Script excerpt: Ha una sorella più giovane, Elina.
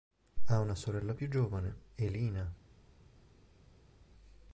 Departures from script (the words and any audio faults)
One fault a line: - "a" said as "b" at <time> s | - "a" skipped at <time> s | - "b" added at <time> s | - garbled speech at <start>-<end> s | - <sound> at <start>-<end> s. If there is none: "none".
none